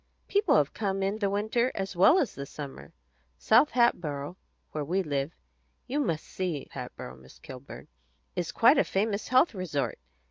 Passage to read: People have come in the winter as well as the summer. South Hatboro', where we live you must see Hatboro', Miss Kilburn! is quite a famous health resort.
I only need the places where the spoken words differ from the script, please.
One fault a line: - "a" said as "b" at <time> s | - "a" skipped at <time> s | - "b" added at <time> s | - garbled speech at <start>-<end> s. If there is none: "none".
none